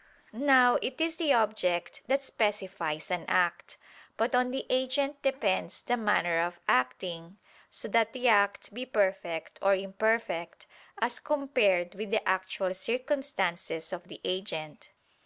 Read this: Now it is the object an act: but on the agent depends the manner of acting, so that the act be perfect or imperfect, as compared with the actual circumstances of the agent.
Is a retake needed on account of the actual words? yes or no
yes